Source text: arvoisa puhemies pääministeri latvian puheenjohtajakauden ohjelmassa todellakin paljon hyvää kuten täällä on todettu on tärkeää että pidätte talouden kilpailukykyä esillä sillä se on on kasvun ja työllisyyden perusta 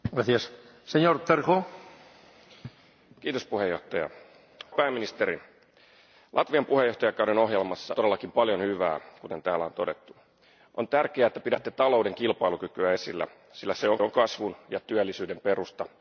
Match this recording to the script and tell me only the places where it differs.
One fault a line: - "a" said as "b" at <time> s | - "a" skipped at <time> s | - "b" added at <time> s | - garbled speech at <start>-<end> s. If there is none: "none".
none